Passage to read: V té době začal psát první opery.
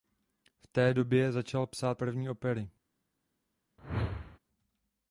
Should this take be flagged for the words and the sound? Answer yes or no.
yes